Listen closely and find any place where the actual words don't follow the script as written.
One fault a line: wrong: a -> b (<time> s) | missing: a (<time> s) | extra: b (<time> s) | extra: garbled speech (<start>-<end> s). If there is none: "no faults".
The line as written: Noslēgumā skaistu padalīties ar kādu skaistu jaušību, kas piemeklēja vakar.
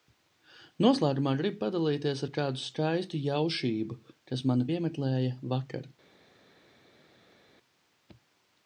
wrong: skaistu -> gribu (1.4 s)
extra: mani (4.5 s)